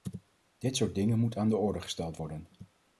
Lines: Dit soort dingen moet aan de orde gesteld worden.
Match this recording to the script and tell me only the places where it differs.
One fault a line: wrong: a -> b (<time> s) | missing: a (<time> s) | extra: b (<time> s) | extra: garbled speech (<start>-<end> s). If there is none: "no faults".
no faults